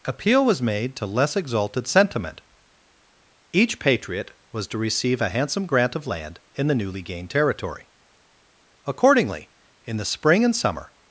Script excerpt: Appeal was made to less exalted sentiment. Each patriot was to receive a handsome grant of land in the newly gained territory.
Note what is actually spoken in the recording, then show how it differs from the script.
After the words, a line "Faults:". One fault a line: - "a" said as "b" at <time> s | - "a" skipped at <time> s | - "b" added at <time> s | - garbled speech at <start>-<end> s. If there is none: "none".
Appeal was made to less exalted sentiment. Each patriot was to receive a handsome grant of land in the newly gained territory. Accordingly, in the spring and summer
Faults:
- "Accordingly in the spring and summer" added at 8.9 s